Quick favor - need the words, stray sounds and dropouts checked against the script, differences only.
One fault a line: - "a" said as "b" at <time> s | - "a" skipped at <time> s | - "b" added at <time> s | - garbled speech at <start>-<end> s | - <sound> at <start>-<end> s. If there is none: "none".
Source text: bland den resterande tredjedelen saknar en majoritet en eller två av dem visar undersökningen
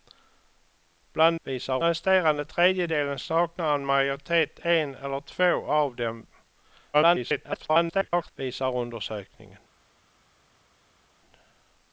- "den" said as "visar" at 1.4 s
- garbled speech at 6.9-8.3 s